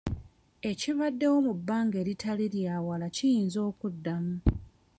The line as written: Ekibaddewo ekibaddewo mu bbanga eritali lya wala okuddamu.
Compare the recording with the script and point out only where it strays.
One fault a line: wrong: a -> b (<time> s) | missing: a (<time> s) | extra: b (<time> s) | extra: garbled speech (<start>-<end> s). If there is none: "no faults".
missing: ekibaddewo (1.4 s)
extra: kiyinza (3.1 s)